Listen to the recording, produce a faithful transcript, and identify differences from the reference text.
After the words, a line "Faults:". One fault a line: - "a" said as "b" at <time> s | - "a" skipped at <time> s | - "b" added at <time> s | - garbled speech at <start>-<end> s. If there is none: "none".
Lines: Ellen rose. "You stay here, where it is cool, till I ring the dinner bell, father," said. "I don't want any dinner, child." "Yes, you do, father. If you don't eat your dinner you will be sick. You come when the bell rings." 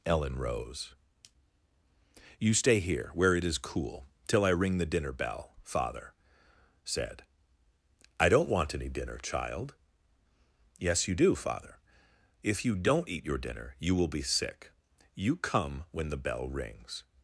Ellen rose. "You stay here, where it is cool, till I ring the dinner bell, father," said. "I don't want any dinner, child." "Yes, you do, father. If you don't eat your dinner you will be sick. You come when the bell rings."
Faults:
none